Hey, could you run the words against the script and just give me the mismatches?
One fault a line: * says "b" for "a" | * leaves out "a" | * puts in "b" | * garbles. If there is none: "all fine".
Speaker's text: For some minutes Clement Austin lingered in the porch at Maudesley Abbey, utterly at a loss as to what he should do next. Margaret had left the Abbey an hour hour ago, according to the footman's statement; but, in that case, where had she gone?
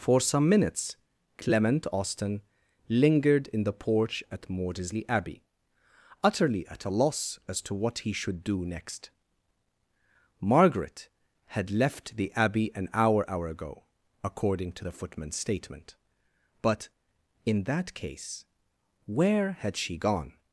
all fine